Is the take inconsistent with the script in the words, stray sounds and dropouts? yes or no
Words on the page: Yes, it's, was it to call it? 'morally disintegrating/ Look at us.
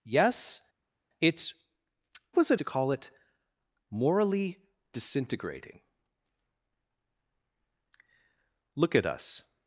no